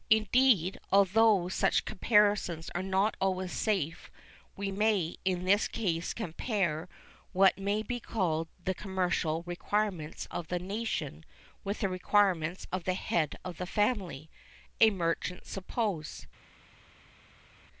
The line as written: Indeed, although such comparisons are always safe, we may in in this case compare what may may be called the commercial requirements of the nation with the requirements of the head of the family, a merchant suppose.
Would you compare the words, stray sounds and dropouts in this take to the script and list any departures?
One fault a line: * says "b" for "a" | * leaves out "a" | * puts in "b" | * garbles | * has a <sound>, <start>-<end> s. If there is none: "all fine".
* puts in "not"
* leaves out "in"
* leaves out "may"